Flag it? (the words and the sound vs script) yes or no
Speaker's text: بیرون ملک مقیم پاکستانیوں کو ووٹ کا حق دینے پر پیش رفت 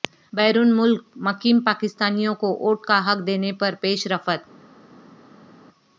no